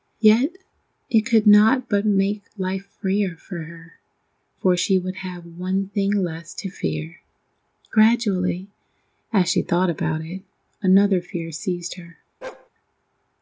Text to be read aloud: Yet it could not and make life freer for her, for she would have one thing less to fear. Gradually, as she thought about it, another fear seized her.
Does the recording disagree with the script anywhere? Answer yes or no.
yes